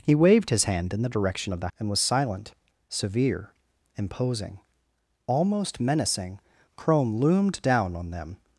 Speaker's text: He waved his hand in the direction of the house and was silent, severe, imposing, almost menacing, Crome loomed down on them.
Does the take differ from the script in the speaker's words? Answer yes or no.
yes